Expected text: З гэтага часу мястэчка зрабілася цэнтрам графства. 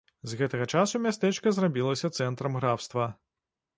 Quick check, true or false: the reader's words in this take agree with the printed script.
true